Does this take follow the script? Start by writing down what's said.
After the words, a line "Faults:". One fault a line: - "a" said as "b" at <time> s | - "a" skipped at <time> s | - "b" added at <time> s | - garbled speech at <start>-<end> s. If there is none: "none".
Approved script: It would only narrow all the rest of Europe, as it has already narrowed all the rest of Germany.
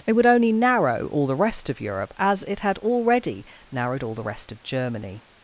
It would only narrow all the rest of Europe, as it had already narrowed all the rest of Germany.
Faults:
- "has" said as "had" at 2.6 s